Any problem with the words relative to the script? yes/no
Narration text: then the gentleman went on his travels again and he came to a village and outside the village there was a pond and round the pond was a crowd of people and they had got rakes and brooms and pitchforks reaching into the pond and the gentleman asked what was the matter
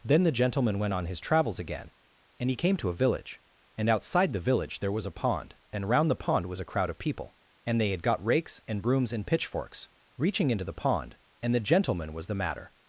yes